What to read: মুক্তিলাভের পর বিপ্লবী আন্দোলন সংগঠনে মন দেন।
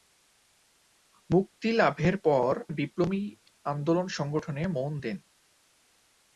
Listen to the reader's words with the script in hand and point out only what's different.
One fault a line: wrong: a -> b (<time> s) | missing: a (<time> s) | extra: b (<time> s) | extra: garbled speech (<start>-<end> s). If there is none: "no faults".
no faults